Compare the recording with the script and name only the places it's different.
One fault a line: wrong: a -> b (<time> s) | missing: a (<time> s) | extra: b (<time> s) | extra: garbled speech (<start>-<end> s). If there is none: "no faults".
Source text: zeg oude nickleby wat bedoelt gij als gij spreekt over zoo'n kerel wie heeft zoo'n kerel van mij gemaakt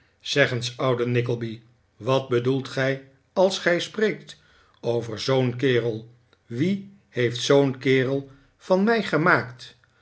extra: eens (0.5 s)